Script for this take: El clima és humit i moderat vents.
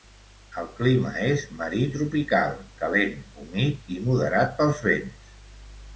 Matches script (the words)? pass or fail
fail